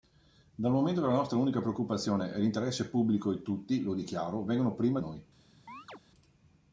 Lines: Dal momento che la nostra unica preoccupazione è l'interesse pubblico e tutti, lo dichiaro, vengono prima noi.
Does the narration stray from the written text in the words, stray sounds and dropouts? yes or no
yes